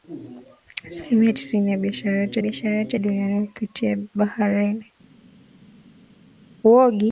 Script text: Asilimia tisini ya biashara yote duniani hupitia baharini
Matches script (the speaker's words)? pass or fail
fail